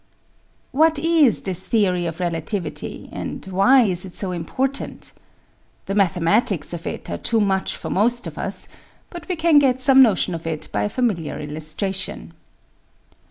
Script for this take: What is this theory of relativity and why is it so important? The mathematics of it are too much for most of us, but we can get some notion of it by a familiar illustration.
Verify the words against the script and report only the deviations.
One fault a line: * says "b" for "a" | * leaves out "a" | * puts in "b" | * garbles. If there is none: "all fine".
all fine